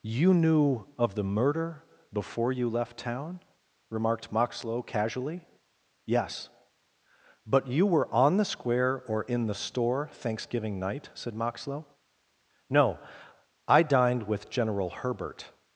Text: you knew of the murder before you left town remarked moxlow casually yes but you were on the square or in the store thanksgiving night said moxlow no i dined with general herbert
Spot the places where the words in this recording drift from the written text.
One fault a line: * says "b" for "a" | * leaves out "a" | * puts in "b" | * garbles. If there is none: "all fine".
all fine